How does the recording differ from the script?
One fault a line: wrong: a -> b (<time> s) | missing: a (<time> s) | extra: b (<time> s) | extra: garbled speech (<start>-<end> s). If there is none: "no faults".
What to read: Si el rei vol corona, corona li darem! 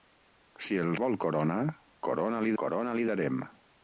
missing: rei (0.9 s)
extra: corona li (2.6 s)